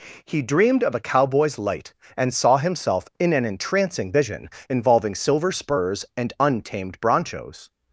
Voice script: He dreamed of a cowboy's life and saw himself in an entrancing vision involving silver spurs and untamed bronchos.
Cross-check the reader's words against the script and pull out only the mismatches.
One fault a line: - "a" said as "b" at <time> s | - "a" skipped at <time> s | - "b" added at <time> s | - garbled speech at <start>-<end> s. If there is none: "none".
- "life" said as "light" at 1.6 s